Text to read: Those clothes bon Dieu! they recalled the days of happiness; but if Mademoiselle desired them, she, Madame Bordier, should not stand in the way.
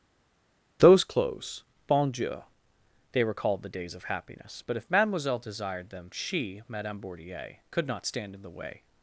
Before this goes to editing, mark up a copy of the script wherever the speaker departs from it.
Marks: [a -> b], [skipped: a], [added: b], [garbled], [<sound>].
Those clothes bon Dieu! they recalled the days of happiness; but if Mademoiselle desired them, she, Madame Bordier, [should -> could] not stand in the way.